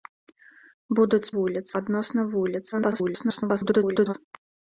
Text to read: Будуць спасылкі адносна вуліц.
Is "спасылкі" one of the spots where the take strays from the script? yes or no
yes